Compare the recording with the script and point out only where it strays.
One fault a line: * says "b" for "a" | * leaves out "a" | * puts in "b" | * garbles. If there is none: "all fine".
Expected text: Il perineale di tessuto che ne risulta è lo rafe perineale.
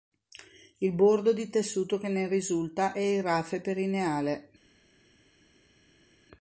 * says "bordo" for "perineale"
* says "il" for "lo"